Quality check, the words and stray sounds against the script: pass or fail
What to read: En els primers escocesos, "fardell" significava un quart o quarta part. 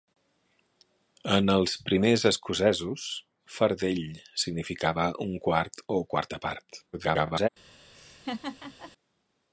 fail